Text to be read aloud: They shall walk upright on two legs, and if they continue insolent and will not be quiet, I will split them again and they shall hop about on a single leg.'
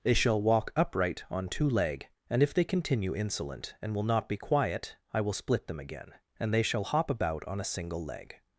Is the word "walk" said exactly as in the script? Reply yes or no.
yes